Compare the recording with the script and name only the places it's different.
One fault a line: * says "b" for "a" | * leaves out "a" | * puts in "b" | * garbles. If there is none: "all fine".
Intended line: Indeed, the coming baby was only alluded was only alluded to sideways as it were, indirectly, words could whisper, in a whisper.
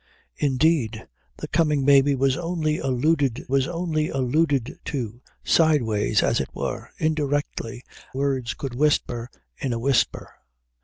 all fine